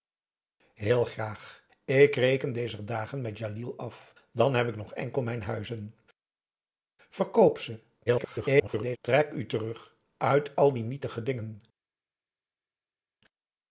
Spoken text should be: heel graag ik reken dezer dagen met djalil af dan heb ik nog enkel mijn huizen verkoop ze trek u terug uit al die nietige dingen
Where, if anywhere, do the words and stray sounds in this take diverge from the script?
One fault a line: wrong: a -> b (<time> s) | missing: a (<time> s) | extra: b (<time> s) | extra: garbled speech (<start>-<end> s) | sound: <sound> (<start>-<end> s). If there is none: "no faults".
extra: garbled speech (8.1-9.0 s)